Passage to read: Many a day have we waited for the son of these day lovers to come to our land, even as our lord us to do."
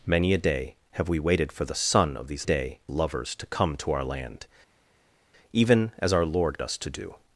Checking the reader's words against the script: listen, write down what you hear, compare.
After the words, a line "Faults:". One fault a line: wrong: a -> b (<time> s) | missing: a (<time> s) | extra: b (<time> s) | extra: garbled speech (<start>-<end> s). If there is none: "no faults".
Many a day have we waited for the son of these day lovers to come to our land, even as our lord us to do."
Faults:
no faults